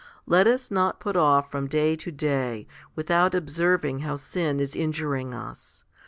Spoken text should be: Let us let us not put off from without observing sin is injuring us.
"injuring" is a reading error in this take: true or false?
false